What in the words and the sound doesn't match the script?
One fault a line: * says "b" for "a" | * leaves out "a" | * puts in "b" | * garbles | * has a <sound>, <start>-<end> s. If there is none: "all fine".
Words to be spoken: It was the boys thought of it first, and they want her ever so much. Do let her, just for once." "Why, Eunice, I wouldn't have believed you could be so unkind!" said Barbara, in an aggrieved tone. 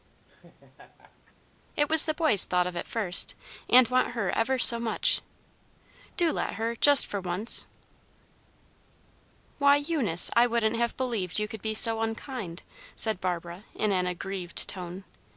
* has a laugh, 0.3-1.3 s
* leaves out "they"